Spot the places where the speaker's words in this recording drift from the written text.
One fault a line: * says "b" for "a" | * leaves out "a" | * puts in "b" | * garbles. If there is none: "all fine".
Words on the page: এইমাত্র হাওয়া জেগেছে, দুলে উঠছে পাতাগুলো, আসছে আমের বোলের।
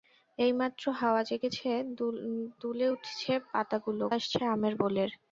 all fine